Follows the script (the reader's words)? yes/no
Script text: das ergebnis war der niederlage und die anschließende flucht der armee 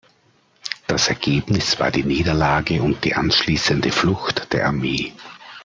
no